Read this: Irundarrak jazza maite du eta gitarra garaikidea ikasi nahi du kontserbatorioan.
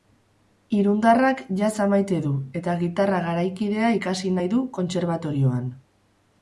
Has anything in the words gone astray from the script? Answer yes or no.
no